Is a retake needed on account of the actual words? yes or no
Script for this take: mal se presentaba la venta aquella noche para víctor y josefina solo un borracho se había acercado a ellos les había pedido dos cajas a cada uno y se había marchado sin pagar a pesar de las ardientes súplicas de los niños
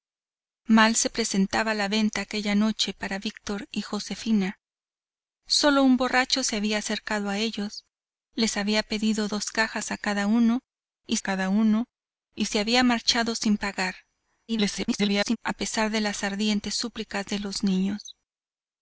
yes